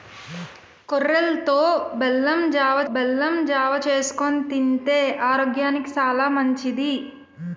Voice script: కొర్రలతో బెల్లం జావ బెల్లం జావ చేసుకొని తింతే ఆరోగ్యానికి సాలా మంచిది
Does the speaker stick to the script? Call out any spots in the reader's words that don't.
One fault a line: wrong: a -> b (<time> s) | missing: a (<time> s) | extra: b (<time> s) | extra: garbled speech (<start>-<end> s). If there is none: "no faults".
no faults